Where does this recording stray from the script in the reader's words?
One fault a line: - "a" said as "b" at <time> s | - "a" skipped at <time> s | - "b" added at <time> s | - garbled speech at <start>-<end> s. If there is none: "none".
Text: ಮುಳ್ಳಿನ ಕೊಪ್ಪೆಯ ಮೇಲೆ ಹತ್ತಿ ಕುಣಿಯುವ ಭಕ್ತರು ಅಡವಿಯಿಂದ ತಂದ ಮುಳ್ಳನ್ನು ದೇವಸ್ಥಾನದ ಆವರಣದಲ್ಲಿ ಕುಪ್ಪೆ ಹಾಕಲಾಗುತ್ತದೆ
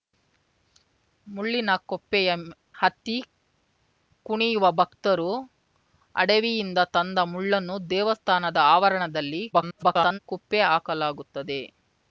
- "ಮೇಲೆ" skipped at 2.3 s
- garbled speech at 9.5-10.2 s